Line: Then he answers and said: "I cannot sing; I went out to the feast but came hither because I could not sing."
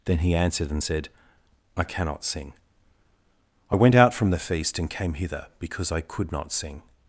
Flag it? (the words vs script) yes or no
yes